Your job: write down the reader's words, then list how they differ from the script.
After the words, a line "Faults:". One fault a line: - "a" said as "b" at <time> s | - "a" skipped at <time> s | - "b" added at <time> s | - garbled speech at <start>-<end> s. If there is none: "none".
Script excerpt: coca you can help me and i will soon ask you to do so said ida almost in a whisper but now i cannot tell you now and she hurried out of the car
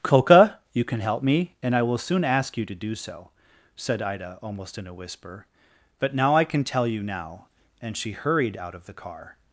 coca you can help me and i will soon ask you to do so said ida almost in a whisper but now i can tell you now and she hurried out of the car
Faults:
- "cannot" said as "can" at 6.4 s